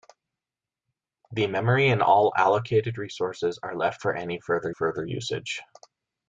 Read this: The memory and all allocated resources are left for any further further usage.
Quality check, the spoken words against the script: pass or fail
pass